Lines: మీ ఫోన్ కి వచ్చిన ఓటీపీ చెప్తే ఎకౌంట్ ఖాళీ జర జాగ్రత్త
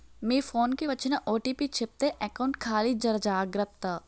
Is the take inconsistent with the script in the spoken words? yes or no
no